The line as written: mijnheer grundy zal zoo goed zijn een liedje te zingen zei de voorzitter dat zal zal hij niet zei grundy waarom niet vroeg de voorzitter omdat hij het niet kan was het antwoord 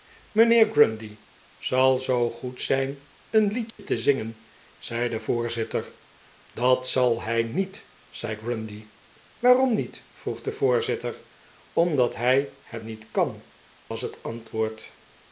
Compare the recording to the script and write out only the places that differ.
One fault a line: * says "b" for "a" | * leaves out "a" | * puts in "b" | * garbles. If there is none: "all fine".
* leaves out "zal"